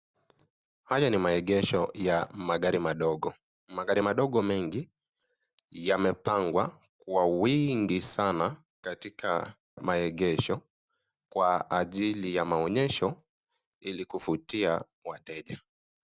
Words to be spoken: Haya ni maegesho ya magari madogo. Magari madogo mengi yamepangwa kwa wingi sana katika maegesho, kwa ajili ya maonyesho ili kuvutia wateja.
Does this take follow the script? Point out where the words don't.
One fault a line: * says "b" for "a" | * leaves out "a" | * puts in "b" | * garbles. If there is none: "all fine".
all fine